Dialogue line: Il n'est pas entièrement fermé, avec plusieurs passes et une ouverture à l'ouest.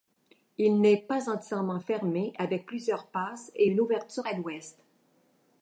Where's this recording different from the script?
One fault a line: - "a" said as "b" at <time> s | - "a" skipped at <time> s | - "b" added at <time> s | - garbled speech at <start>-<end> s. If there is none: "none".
none